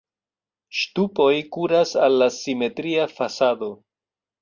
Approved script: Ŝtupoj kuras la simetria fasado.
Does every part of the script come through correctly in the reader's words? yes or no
no